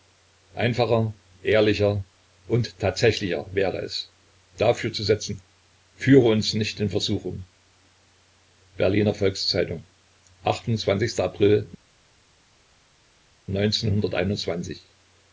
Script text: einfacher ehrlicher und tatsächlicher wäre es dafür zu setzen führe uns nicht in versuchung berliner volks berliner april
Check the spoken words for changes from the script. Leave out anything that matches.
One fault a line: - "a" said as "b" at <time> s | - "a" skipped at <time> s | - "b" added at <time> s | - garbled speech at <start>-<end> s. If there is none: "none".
- "berliner" said as "zeitung" at 9.5 s